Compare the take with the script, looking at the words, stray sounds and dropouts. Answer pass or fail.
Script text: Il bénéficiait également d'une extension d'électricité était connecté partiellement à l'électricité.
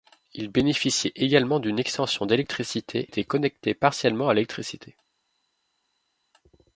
pass